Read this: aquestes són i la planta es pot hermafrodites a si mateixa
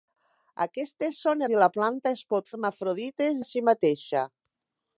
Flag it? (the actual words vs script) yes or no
no